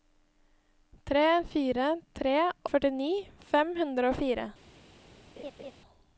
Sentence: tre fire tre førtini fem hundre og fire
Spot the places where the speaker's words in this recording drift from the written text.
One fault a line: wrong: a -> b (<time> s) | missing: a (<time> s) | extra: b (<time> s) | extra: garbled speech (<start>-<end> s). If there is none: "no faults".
no faults